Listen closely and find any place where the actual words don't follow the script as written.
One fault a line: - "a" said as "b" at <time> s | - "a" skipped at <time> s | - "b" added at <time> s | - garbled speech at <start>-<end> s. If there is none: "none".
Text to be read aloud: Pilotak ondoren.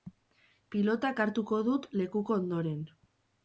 - "hartuko dut lekuko" added at 1.2 s